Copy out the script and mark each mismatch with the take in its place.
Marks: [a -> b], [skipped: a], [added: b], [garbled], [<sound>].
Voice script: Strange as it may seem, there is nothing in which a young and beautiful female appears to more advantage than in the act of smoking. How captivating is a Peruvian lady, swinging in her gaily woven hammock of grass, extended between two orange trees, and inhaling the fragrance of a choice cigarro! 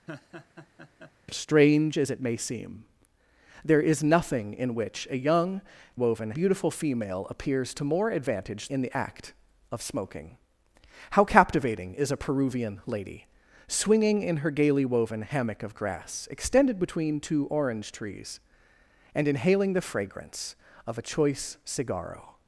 [laugh] Strange as it may seem, there is nothing in which a young [and -> woven] beautiful female appears to more advantage [skipped: than] in the act of smoking. How captivating is a Peruvian lady, swinging in her gaily woven hammock of grass, extended between two orange trees, and inhaling the fragrance of a choice cigarro!